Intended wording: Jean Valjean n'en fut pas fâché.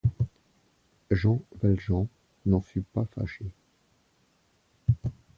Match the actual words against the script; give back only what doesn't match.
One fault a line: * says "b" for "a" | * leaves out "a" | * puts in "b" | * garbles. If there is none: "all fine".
all fine